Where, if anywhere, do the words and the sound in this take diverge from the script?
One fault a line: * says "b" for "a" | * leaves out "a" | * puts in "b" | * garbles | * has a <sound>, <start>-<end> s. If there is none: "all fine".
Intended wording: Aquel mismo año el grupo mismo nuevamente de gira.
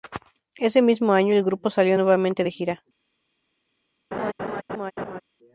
* says "Ese" for "Aquel"
* says "salió" for "mismo"
* has a laugh, 4.1-5.2 s